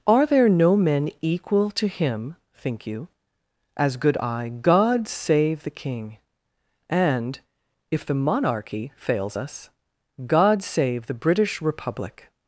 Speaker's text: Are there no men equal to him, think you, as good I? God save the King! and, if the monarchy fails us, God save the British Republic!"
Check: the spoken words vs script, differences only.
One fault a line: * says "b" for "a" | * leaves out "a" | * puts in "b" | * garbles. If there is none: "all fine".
all fine